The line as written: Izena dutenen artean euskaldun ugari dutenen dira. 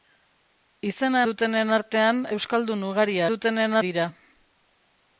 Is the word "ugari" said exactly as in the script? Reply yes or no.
yes